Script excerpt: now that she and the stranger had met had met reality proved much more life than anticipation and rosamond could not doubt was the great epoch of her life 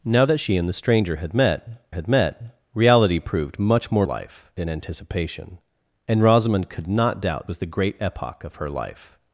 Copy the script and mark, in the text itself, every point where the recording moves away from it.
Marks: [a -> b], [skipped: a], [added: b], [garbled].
now that she and the stranger had met had met reality proved much more life than anticipation and rosamond could not doubt was the great epoch of her life